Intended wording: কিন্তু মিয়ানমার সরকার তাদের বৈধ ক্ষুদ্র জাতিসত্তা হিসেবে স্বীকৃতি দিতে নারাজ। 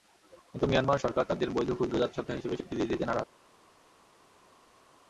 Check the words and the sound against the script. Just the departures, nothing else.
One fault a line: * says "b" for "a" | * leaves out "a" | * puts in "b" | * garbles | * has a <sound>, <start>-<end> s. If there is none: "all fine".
all fine